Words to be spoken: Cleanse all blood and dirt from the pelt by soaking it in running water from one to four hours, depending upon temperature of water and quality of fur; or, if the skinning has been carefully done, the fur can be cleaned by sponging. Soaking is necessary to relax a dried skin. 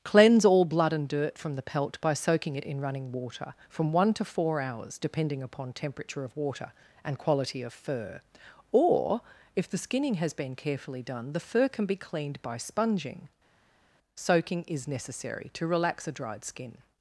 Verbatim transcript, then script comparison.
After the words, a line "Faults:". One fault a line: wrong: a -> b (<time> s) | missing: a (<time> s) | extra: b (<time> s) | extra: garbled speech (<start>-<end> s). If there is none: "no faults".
Cleanse all blood and dirt from the pelt by soaking it in running water from one to four hours, depending upon temperature of water and quality of fur; or, if the skinning has been carefully done, the fur can be cleaned by sponging. Soaking is necessary to relax a dried skin.
Faults:
no faults